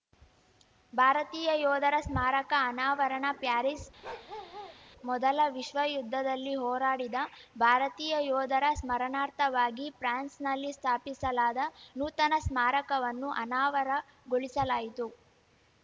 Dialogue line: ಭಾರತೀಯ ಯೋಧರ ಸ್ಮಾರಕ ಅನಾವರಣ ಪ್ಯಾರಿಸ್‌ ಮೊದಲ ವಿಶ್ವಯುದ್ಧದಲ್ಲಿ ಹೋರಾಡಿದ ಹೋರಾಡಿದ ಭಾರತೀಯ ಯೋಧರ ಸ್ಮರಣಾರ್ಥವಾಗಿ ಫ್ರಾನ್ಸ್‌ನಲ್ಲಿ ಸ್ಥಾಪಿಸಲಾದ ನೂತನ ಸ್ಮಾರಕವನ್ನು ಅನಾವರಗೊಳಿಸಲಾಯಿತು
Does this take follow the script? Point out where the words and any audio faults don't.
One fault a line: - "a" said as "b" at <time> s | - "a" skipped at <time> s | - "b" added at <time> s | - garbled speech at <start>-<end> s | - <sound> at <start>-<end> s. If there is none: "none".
- bark at 4.0-4.8 s
- "ಹೋರಾಡಿದ" skipped at 7.2 s